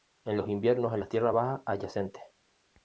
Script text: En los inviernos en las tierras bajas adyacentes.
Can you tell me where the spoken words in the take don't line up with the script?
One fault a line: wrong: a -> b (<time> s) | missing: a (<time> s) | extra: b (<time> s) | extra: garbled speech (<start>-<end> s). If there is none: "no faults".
no faults